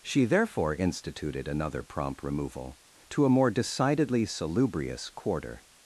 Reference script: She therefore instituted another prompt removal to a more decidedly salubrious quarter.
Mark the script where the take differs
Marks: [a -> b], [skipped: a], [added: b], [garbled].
She therefore instituted another prompt removal to a more decidedly salubrious quarter.